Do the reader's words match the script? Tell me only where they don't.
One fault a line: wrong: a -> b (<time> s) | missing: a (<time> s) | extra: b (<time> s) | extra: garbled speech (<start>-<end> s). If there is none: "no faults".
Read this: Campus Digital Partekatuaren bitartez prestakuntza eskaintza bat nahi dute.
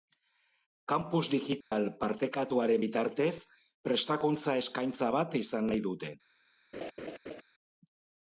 extra: izan (5.4 s)